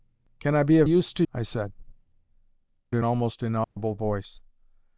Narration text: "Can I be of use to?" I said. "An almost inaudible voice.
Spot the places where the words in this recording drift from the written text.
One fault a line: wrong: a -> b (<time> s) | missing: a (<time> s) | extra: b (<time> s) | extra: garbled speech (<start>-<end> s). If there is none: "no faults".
no faults